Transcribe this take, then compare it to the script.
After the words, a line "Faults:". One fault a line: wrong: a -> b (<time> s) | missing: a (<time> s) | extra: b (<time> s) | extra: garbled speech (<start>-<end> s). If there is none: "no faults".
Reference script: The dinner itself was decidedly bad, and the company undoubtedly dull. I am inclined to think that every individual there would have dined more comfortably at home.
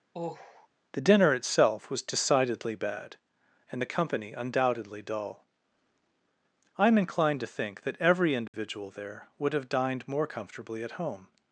The dinner itself was decidedly bad, and the company undoubtedly dull. I am inclined to think that every individual there would have dined more comfortably at home.
Faults:
no faults